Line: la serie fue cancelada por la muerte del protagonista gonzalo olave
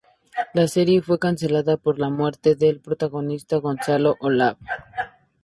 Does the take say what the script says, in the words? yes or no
yes